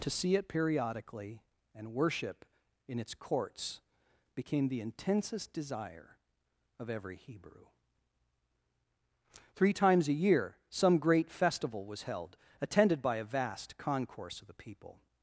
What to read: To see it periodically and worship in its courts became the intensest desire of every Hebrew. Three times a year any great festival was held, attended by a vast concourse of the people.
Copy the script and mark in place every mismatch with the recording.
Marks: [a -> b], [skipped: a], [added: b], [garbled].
To see it periodically and worship in its courts became the intensest desire of every Hebrew. Three times a year [any -> some] great festival was held, attended by a vast concourse of the people.